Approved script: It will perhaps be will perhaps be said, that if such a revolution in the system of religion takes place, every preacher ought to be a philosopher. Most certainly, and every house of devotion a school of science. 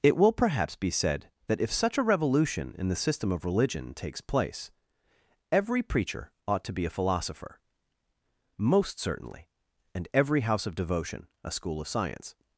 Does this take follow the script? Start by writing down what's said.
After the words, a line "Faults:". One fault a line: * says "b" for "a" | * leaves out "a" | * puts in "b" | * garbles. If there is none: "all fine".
It will perhaps be said, that if such a revolution in the system of religion takes place, every preacher ought to be a philosopher. Most certainly, and every house of devotion a school of science.
Faults:
* leaves out "will perhaps be"